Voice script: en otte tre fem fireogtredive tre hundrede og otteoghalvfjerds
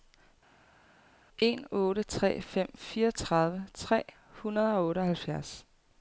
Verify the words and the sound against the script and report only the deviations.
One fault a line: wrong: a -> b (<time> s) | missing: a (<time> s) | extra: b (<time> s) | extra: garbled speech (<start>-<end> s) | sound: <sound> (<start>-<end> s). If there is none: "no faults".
no faults